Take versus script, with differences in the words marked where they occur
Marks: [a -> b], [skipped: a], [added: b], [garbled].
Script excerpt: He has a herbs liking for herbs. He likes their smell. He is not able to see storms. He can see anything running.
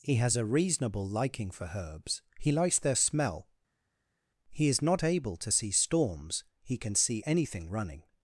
He has a [herbs -> reasonable] liking for herbs. He likes their smell. He is not able to see storms. He can see anything running.